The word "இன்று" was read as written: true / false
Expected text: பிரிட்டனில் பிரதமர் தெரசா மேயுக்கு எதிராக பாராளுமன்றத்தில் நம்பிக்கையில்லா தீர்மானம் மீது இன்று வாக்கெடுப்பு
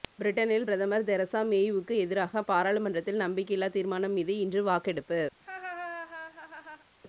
true